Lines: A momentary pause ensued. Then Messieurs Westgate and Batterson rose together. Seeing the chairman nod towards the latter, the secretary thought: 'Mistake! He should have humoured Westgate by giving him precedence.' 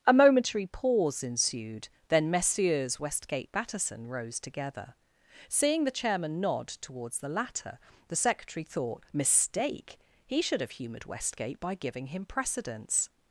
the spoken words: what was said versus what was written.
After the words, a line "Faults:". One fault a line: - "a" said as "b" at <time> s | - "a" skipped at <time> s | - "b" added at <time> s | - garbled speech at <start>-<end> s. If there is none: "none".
A momentary pause ensued. Then Messieurs Westgate Batterson rose together. Seeing the chairman nod towards the latter, the secretary thought: 'Mistake! He should have humoured Westgate by giving him precedence.'
Faults:
- "and" skipped at 3.5 s